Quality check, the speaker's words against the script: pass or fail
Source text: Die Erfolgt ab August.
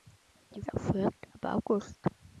pass